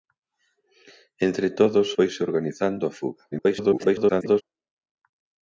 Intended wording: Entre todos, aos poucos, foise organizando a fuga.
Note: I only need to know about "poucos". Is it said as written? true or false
false